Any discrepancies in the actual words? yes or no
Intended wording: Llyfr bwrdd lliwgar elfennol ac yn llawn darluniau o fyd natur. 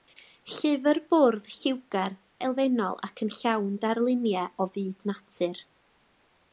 no